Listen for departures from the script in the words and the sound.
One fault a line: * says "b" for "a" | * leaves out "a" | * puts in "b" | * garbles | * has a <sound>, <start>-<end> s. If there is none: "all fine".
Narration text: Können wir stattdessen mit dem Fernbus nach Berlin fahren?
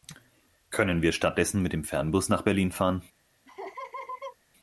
* has a laugh, 3.5-4.4 s